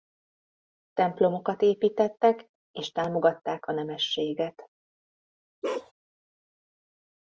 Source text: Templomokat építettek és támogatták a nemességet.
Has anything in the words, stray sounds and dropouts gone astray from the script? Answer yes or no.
yes